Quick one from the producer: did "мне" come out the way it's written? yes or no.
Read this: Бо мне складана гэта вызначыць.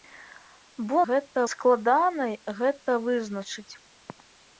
no